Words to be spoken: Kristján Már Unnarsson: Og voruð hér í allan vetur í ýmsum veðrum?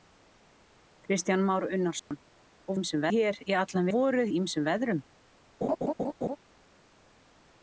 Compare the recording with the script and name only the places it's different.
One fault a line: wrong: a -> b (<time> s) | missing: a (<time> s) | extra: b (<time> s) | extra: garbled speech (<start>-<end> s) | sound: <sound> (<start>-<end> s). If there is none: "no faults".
sound: dropout (2.0-2.1 s)
wrong: voruð -> ýmsum (2.8 s)
wrong: vetur -> voruð (3.9 s)
sound: laugh (5.6-6.4 s)